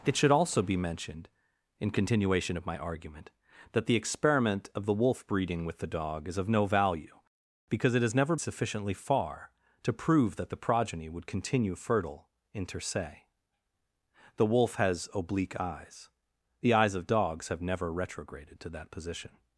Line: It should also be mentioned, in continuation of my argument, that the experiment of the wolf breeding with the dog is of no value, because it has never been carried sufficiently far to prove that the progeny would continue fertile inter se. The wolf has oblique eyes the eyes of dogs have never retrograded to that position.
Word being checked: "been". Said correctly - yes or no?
no